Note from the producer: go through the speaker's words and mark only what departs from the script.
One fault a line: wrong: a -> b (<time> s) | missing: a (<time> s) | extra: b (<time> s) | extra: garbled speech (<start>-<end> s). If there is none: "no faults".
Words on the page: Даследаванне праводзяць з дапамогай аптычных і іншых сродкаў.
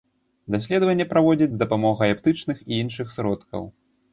no faults